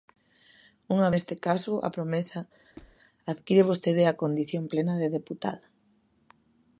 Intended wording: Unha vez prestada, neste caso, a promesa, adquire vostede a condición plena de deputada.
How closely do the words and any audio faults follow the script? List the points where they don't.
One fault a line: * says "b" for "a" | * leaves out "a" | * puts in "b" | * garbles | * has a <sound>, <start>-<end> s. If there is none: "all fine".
* leaves out "vez prestada"
* has a squeak, 2.8-3.0 s